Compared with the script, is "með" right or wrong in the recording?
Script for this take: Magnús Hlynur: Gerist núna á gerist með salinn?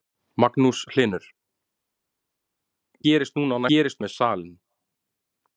right